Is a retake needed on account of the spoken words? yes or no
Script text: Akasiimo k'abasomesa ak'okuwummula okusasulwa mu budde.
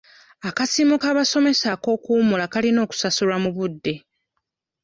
yes